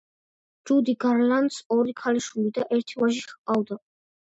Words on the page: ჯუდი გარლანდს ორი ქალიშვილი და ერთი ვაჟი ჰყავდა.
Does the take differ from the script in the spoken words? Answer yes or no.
no